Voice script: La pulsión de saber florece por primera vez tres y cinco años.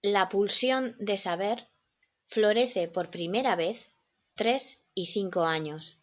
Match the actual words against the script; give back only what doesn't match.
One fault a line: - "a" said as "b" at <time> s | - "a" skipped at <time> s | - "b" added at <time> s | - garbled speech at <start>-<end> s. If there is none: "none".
none